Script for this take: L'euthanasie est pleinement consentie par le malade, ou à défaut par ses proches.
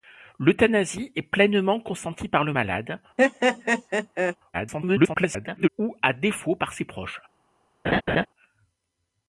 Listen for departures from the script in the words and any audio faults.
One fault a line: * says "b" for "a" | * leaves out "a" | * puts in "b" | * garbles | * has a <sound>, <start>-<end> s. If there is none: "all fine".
* has a laugh, 3.2-4.4 s
* garbles
* has a laugh, 7.8-8.3 s